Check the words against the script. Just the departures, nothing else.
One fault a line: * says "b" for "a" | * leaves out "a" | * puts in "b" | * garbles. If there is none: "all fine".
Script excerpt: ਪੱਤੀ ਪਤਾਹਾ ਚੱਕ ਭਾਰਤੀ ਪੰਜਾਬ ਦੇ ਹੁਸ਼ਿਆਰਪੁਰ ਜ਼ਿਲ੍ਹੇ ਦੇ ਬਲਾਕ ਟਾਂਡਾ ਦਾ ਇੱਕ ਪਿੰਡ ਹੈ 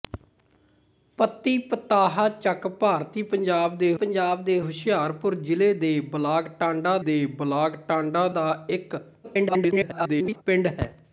* puts in "ਪੰਜਾਬ ਦੇ"
* puts in "ਦੇ ਬਲਾਕ ਟਾਂਡਾ"
* garbles